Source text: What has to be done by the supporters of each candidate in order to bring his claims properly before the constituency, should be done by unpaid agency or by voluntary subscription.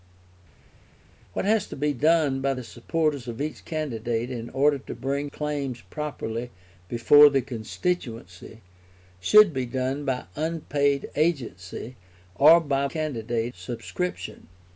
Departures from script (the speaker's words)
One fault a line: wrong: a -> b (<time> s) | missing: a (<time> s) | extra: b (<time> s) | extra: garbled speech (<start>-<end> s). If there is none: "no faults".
missing: his (5.3 s)
wrong: voluntary -> candidate (12.9 s)